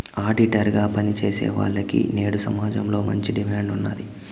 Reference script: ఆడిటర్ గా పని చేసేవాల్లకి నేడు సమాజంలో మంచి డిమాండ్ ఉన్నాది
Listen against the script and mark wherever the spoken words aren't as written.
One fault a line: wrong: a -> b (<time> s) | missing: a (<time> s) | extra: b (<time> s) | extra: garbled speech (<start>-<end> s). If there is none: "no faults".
no faults